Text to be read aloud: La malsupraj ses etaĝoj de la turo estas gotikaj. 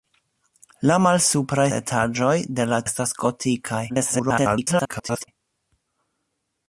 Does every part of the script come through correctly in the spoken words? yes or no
no